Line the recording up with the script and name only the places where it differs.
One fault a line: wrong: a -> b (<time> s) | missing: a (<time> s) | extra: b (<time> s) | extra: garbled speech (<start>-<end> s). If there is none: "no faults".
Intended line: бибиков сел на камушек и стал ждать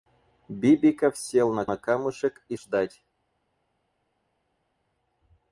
extra: на (1.6 s)
missing: стал (2.6 s)